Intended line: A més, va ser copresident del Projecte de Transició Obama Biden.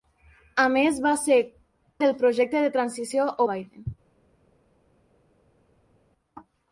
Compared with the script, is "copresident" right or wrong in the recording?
wrong